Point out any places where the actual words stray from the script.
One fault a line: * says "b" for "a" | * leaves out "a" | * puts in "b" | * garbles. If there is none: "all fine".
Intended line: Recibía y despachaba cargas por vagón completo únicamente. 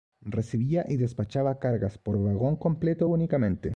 all fine